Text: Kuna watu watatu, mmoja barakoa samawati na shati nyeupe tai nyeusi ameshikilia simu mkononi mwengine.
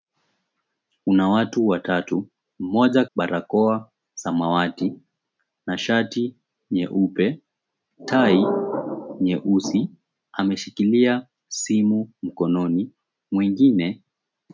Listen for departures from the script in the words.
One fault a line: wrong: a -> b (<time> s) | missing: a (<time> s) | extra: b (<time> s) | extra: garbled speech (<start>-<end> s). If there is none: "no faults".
no faults